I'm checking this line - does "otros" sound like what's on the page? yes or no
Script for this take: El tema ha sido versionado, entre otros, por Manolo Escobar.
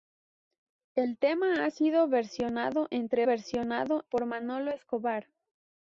no